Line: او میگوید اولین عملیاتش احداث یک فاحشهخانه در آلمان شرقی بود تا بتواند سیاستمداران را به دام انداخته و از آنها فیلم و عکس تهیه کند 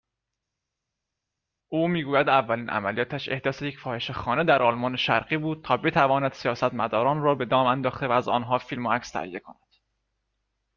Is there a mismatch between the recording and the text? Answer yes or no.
no